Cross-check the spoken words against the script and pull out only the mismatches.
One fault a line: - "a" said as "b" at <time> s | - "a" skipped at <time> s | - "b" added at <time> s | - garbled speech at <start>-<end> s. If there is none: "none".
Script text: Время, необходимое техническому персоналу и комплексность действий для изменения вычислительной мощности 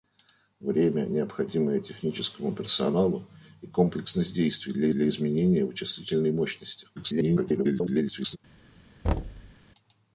- "для" added at 4.9 s
- garbled speech at 7.0-8.4 s